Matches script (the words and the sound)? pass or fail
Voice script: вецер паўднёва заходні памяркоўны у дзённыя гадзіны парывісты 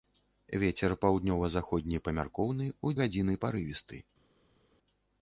fail